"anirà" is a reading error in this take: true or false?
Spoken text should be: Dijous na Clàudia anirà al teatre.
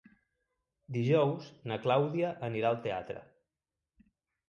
false